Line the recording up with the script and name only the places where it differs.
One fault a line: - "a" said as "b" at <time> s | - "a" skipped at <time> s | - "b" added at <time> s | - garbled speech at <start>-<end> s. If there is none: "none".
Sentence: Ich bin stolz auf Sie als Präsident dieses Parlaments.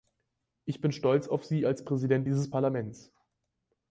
none